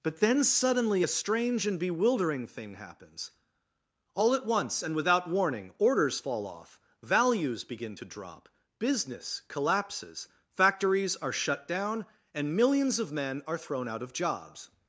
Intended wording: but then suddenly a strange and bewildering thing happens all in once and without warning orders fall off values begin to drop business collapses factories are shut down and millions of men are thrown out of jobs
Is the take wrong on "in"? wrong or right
wrong